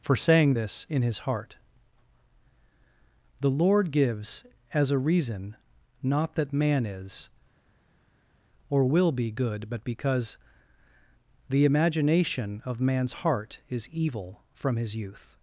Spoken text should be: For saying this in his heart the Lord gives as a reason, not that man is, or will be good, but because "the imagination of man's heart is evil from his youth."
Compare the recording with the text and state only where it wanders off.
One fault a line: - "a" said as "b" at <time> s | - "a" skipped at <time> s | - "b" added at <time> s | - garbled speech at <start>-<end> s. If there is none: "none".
none